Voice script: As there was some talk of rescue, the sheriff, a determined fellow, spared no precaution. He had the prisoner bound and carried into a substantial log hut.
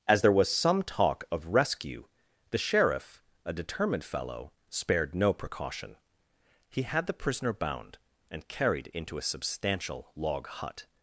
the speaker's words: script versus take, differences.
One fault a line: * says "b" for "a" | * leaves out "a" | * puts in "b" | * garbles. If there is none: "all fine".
all fine